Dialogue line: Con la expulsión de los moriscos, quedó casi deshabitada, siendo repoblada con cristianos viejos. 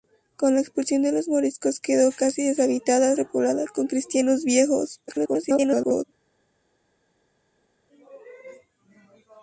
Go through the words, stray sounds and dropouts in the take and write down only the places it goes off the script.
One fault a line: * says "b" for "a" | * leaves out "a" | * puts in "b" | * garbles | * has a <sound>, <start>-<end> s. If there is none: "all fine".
* leaves out "siendo"
* garbles